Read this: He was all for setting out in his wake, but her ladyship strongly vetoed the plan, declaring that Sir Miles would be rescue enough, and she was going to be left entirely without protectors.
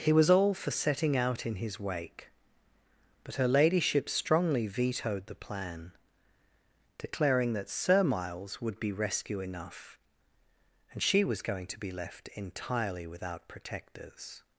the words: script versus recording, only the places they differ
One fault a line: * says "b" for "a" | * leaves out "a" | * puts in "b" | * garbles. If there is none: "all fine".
all fine